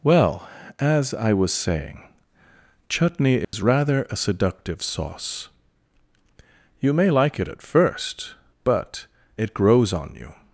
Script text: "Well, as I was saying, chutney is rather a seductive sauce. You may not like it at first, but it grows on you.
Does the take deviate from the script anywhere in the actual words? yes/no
yes